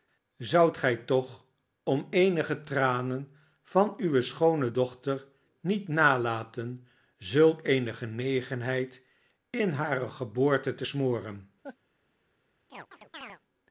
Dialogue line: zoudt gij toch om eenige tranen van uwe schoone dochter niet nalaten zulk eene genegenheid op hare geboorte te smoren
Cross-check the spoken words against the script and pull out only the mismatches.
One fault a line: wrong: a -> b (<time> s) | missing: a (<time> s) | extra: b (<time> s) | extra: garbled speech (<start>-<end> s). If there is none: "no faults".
wrong: op -> in (9.5 s)